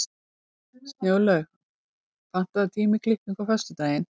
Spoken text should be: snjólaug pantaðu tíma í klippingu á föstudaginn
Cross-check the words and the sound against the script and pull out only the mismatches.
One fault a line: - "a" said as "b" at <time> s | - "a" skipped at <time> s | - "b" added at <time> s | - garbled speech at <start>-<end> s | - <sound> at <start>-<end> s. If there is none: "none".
none